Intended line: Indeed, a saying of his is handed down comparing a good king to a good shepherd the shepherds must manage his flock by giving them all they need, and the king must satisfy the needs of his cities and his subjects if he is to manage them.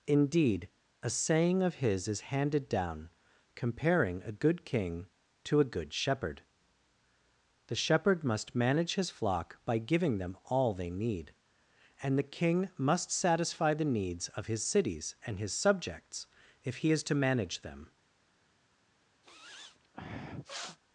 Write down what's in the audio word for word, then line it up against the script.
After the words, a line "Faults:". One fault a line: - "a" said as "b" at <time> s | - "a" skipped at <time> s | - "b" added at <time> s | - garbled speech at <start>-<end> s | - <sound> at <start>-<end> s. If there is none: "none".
Indeed, a saying of his is handed down comparing a good king to a good shepherd the shepherd must manage his flock by giving them all they need, and the king must satisfy the needs of his cities and his subjects if he is to manage them.
Faults:
- "shepherds" said as "shepherd" at 7.8 s
- sniff at 19.2-20.8 s